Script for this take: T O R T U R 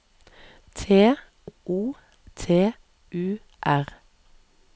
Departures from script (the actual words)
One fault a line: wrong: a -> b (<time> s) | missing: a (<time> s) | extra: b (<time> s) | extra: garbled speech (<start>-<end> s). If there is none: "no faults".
missing: R (1.9 s)